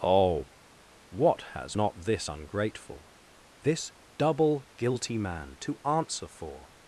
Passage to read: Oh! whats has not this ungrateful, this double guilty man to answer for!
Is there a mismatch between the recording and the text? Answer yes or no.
yes